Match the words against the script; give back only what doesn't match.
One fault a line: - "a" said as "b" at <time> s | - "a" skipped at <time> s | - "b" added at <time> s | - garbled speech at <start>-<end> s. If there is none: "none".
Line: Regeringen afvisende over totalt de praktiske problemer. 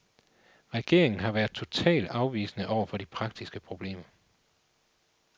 - "har været totalt" added at 1.2 s
- "totalt" said as "for" at 2.9 s